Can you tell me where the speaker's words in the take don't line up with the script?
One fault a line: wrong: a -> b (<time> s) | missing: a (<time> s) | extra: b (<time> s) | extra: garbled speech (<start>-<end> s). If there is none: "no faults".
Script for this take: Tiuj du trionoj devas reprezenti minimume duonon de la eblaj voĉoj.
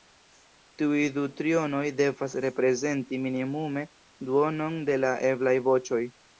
no faults